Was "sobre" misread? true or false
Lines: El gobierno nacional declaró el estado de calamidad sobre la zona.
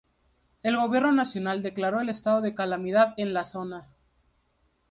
true